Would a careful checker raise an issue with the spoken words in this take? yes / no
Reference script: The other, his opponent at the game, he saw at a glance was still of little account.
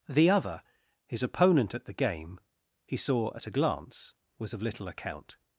yes